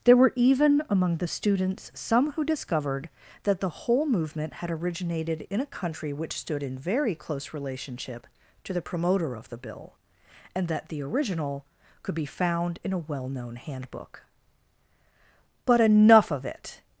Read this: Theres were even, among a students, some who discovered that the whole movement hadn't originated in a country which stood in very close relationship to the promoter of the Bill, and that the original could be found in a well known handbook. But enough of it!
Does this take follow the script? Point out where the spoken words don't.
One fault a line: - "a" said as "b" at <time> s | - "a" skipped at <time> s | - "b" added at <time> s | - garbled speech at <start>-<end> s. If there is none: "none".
- "Theres" said as "There" at 0.0 s
- "a" said as "the" at 1.2 s
- "hadn't" said as "had" at 4.5 s